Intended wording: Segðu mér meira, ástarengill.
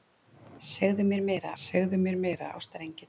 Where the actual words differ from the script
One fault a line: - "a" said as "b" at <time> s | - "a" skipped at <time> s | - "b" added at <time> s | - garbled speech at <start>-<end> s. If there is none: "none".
- "segðu mér meira" added at 1.6 s